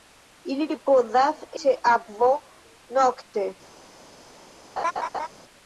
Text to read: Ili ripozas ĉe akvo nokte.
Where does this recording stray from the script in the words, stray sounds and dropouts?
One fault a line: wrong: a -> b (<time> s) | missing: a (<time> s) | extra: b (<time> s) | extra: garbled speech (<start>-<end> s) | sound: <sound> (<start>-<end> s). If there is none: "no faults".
sound: laugh (4.8-5.3 s)